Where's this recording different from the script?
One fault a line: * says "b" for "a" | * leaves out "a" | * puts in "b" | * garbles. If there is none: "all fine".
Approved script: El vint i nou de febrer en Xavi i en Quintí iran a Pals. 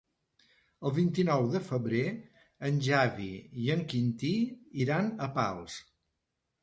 all fine